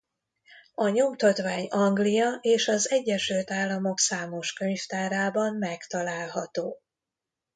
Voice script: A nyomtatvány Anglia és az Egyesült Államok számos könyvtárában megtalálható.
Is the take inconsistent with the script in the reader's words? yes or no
no